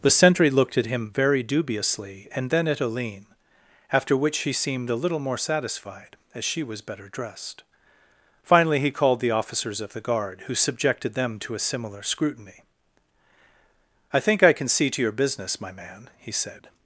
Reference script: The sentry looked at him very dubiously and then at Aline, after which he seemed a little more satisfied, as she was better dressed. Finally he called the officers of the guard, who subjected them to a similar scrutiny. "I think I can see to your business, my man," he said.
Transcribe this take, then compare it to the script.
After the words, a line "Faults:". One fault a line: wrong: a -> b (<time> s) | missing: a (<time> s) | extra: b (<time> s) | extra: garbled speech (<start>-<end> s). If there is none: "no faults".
The sentry looked at him very dubiously and then at Aline, after which he seemed a little more satisfied, as she was better dressed. Finally he called the officers of the guard, who subjected them to a similar scrutiny. "I think I can see to your business, my man," he said.
Faults:
no faults